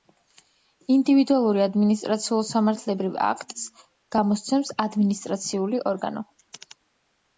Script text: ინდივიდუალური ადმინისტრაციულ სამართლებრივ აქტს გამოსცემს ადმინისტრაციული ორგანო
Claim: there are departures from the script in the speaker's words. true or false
false